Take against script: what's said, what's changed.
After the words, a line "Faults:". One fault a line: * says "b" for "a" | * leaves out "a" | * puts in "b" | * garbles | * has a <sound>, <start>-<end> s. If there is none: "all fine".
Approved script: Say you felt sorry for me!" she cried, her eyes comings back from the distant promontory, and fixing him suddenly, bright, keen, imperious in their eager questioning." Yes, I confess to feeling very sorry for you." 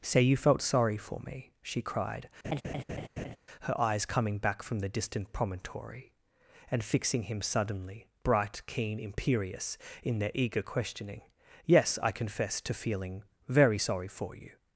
Say you felt sorry for me!" she cried, her eyes coming back from the distant promontory, and fixing him suddenly, bright, keen, imperious in their eager questioning." Yes, I confess to feeling very sorry for you."
Faults:
* has a laugh, 2.4-3.4 s
* says "coming" for "comings"